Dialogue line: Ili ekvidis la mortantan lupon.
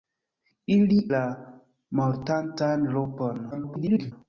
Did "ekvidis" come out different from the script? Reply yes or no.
yes